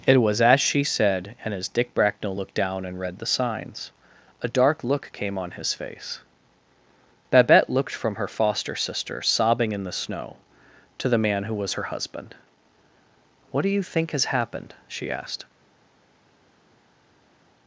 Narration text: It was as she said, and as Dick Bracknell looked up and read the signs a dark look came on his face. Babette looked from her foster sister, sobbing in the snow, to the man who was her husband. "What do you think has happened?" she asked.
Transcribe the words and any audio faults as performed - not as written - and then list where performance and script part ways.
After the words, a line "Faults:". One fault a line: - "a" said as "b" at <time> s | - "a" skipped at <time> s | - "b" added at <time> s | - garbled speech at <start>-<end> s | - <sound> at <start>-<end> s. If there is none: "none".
It was as she said, and as Dick Bracknell looked down and read the signs a dark look came on his face. Babette looked from her foster sister, sobbing in the snow, to the man who was her husband. "What do you think has happened?" she asked.
Faults:
- "up" said as "down" at 2.5 s